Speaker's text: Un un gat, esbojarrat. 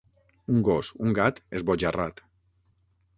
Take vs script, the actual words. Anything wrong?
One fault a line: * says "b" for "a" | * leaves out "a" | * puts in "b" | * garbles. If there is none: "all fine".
* puts in "gos"